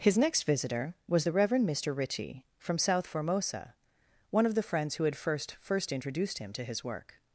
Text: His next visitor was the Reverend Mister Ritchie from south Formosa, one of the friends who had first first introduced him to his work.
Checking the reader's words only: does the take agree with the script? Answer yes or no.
yes